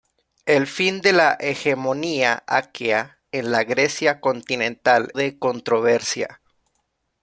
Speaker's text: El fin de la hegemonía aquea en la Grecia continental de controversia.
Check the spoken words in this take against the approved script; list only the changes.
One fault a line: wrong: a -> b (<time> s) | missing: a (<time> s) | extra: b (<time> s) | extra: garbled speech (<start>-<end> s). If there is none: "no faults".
no faults